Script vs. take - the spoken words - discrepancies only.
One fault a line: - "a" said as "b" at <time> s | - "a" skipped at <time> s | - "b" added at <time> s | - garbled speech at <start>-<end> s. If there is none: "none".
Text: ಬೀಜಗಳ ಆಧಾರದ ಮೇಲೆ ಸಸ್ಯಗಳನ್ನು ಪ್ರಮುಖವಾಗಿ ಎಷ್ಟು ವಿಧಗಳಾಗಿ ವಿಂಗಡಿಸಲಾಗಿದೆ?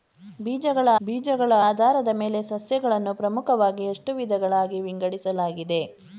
- "ಬೀಜಗಳ" added at 1.0 s